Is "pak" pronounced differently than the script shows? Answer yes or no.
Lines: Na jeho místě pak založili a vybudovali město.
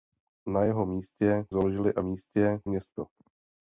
yes